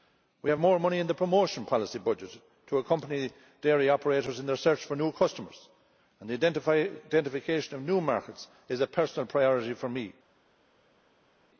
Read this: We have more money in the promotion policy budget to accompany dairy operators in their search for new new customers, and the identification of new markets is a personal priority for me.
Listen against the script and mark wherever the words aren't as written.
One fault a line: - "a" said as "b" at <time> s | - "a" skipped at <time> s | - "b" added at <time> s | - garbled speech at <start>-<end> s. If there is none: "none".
- "new" skipped at 5.1 s